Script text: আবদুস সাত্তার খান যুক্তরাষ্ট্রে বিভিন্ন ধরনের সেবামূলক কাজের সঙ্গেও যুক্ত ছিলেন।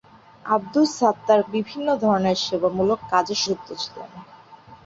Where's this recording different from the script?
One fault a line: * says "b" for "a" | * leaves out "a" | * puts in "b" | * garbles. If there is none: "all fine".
* leaves out "খান যুক্তরাষ্ট্রে"
* leaves out "সঙ্গেও"